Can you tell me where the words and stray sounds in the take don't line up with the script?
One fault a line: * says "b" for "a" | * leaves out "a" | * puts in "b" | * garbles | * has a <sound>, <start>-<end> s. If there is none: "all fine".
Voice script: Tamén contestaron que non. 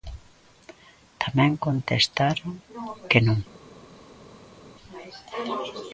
all fine